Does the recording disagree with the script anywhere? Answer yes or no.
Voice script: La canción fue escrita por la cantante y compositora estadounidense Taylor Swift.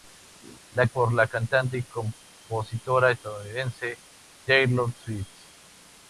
yes